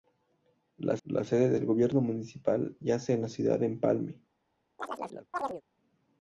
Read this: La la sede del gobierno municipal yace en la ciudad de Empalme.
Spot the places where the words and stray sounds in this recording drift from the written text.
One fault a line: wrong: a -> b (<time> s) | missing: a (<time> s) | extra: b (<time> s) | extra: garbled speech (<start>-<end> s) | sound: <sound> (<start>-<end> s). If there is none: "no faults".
sound: chirp (4.8-5.6 s)